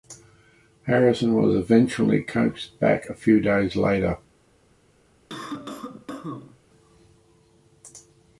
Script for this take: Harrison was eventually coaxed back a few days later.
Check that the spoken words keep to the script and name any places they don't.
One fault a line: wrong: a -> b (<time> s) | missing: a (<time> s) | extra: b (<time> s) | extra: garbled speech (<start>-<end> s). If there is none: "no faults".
no faults